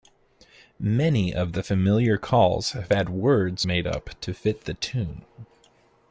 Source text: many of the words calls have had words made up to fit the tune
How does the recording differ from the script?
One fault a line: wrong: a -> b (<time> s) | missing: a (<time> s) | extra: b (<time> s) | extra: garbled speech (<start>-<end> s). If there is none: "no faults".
wrong: words -> familiar (1.6 s)